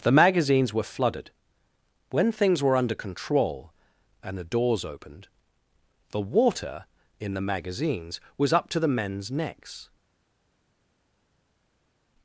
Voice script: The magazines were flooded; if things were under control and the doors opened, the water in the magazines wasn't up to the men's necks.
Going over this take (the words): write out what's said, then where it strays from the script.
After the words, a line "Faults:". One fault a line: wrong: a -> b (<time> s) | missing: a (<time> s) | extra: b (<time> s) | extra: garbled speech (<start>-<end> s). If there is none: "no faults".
The magazines were flooded; when things were under control and the doors opened, the water in the magazines was up to the men's necks.
Faults:
wrong: if -> when (2.1 s)
wrong: wasn't -> was (8.4 s)